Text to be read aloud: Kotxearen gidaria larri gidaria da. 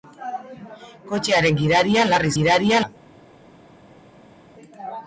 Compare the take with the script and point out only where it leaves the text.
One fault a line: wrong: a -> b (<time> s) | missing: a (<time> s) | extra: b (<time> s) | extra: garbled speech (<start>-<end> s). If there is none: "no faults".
no faults